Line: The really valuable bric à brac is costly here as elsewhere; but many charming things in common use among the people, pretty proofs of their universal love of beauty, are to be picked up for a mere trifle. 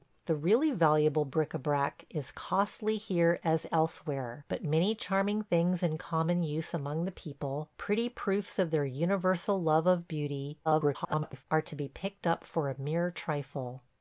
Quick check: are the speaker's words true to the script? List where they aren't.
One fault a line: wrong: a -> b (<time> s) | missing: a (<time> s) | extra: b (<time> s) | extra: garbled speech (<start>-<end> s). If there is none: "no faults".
extra: garbled speech (10.6-11.4 s)